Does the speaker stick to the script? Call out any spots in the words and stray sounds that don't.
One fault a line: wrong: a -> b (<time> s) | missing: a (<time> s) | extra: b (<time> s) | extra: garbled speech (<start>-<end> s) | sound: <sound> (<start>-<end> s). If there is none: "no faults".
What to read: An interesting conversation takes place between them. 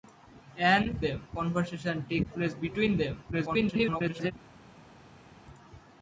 wrong: interesting -> them (1.0 s)
extra: garbled speech (3.3-4.3 s)